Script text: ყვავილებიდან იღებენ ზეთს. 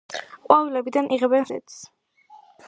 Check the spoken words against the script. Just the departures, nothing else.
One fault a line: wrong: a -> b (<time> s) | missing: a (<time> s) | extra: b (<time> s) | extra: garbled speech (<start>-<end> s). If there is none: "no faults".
no faults